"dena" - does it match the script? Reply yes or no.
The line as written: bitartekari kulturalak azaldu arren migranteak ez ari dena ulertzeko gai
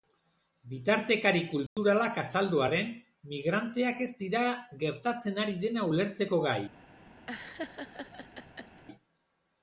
yes